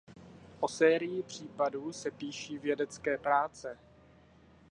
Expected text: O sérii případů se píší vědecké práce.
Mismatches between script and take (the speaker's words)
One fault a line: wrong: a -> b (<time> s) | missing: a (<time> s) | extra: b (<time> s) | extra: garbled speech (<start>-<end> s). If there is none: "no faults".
no faults